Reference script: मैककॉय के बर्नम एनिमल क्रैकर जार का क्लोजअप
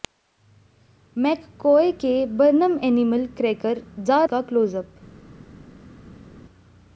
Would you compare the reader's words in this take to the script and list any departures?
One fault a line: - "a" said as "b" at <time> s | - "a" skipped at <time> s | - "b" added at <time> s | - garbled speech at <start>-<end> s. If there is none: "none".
none